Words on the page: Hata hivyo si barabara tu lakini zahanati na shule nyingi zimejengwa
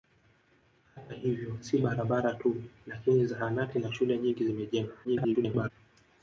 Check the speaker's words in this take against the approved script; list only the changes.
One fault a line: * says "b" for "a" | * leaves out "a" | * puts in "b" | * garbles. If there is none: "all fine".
* garbles